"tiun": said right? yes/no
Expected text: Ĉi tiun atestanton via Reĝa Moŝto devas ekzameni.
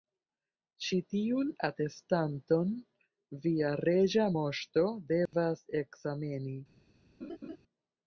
yes